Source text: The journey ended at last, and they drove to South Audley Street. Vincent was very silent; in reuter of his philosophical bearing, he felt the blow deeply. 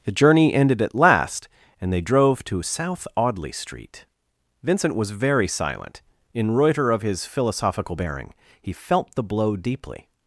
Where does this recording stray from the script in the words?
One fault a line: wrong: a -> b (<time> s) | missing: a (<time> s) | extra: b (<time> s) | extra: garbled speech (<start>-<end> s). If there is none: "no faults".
no faults